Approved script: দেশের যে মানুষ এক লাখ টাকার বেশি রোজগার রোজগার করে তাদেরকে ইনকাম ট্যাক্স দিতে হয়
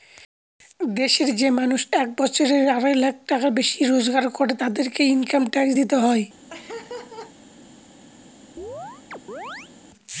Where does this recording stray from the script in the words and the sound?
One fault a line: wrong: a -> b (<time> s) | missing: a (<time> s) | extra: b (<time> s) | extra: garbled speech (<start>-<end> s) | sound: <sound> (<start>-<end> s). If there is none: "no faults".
extra: বছরে আড়াই (2.2 s)
missing: রোজগার (4.3 s)
sound: laugh (6.5-7.3 s)
sound: chirp (8.6-9.7 s)